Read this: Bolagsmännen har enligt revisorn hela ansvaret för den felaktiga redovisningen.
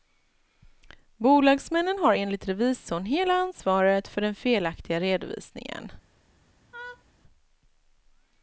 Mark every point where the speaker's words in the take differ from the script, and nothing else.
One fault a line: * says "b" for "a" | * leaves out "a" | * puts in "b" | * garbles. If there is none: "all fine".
all fine